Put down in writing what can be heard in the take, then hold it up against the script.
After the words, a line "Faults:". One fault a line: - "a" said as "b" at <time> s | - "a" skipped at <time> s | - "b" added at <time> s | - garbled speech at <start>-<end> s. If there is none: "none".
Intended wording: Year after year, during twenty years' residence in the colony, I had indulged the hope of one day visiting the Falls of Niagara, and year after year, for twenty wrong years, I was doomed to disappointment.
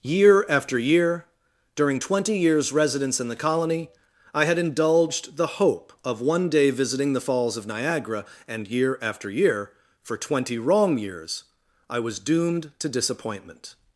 Year after year, during twenty years' residence in the colony, I had indulged the hope of one day visiting the Falls of Niagara, and year after year, for twenty wrong years, I was doomed to disappointment.
Faults:
none